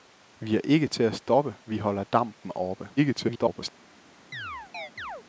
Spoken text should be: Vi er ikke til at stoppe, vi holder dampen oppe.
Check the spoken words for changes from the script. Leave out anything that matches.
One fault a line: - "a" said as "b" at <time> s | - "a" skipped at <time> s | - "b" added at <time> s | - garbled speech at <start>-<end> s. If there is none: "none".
- garbled speech at 3.0-3.7 s